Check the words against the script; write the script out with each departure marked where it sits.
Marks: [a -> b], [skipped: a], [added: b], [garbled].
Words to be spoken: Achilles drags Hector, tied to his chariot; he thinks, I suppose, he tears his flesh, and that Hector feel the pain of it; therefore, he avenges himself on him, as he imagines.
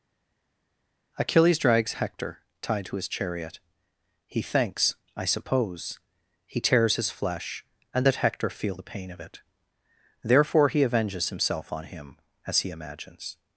Achilles drags Hector, tied to his chariot; he thinks, I suppose, he tears his flesh, and that Hector feel the pain of it; therefore, he avenges himself on him, as he imagines.